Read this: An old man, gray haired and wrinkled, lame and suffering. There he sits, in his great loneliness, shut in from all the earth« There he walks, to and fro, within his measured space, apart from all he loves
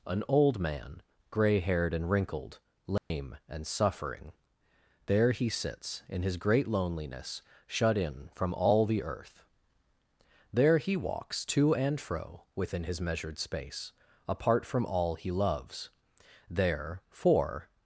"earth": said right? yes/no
yes